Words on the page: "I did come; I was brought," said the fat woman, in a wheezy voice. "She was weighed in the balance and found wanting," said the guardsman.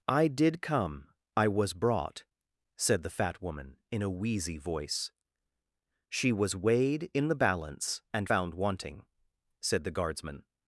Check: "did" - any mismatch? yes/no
no